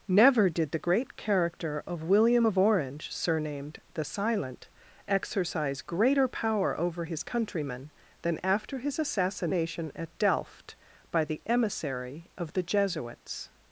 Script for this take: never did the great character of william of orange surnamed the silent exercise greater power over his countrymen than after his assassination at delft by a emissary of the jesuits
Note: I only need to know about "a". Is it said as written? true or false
false